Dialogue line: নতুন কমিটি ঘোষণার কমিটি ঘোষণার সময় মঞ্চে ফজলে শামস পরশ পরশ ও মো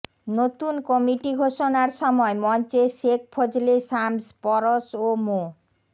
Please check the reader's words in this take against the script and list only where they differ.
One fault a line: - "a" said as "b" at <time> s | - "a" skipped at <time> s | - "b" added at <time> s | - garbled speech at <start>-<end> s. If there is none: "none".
- "কমিটি ঘোষণার" skipped at 1.9 s
- "শেখ" added at 3.0 s
- "পরশ" skipped at 4.8 s